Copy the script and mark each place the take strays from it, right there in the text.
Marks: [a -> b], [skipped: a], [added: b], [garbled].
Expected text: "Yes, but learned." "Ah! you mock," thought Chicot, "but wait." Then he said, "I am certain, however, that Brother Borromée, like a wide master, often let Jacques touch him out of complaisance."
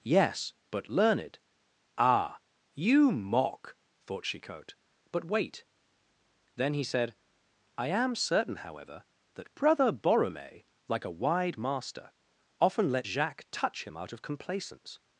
"Yes, but learned." "Ah! you mock," thought Chicot, "but wait." Then he said, "I am certain, however, that Brother Borromée, like a wide master, often let Jacques touch him out of complaisance."